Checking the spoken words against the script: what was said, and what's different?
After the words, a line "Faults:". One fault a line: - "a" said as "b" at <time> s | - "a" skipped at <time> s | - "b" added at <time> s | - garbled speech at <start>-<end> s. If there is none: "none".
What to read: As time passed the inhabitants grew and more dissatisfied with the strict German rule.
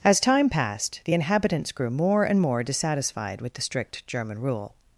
As time passed the inhabitants grew more and more dissatisfied with the strict German rule.
Faults:
- "more" added at 1.9 s